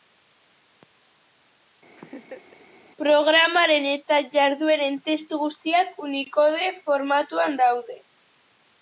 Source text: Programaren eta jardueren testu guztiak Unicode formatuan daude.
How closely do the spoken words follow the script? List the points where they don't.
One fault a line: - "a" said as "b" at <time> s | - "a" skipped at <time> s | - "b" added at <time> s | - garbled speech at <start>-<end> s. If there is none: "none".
none